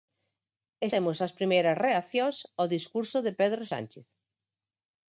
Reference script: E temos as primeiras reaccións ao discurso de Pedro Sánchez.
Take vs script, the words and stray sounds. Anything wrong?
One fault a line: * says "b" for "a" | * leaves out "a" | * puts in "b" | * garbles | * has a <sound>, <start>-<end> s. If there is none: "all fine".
all fine